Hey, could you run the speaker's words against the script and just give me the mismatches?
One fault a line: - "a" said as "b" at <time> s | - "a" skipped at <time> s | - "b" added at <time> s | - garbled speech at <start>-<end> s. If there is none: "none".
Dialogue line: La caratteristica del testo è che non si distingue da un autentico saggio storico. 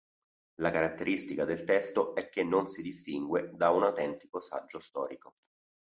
none